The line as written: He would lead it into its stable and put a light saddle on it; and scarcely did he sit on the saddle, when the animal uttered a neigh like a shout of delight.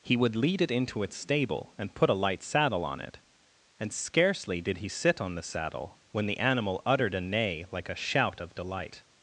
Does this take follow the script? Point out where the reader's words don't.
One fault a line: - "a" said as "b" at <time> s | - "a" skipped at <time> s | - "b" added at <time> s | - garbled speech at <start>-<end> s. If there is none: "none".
none